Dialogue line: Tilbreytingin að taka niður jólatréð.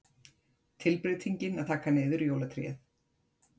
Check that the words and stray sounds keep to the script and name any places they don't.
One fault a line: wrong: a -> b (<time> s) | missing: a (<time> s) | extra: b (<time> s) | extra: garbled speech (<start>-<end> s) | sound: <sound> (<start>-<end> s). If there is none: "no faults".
no faults